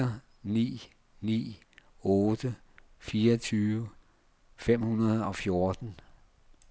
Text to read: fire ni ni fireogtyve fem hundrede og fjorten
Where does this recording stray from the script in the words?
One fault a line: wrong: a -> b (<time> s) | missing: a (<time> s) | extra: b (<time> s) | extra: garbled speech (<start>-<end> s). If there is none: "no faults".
extra: otte (2.0 s)